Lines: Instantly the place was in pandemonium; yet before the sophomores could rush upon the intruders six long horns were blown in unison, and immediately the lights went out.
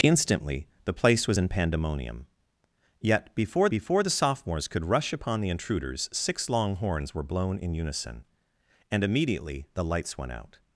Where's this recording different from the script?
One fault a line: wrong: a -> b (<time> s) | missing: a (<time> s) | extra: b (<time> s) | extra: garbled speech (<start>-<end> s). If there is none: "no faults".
extra: before (3.7 s)